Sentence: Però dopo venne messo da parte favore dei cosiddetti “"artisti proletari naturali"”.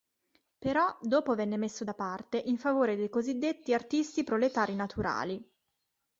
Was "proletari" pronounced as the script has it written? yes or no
yes